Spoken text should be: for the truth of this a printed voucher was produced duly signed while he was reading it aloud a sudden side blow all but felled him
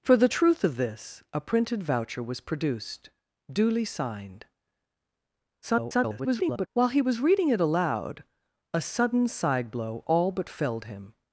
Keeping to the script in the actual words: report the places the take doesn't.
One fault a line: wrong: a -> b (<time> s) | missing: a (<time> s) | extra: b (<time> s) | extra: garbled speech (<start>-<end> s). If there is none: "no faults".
extra: garbled speech (5.6-6.7 s)